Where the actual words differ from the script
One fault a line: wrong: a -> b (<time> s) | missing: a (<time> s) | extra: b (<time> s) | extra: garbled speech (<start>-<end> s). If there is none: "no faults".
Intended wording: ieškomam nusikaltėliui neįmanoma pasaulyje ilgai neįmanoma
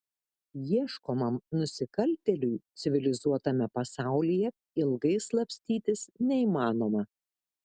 wrong: neįmanoma -> civilizuotame (2.9 s)
extra: slapstytis (5.3 s)